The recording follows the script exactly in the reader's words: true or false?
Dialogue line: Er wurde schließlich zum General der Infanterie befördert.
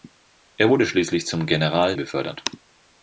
false